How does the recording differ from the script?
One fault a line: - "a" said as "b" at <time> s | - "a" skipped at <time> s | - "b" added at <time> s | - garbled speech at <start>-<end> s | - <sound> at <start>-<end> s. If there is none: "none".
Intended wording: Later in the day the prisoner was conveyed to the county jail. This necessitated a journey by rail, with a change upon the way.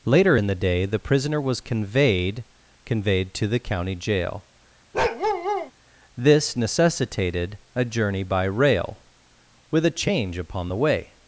- "conveyed" added at 2.8 s
- bark at 4.9-5.7 s